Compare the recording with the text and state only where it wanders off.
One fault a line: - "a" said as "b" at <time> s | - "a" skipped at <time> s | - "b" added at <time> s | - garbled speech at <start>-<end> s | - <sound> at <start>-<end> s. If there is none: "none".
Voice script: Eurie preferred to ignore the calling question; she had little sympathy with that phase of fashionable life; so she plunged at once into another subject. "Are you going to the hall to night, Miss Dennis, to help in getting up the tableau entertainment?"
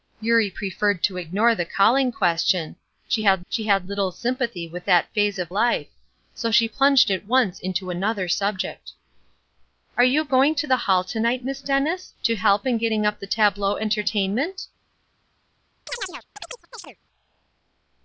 - "she had" added at 3.5 s
- "fashionable" skipped at 5.5 s
- chirp at 15.9-17.0 s